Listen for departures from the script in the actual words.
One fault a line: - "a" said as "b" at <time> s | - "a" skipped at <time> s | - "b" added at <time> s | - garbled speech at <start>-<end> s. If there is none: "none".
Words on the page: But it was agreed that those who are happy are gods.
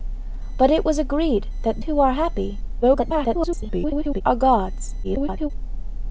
- "those" skipped at 1.8 s
- garbled speech at 2.8-4.2 s
- garbled speech at 5.0-5.5 s